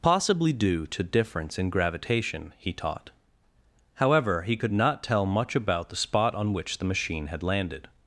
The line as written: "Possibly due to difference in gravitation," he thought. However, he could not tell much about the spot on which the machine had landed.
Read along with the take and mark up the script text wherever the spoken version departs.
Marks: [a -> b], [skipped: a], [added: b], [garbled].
"Possibly due to difference in gravitation," he [thought. -> taught] However, he could not tell much about the spot on which the machine had landed.